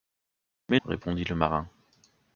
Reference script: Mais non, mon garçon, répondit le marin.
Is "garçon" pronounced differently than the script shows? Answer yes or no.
yes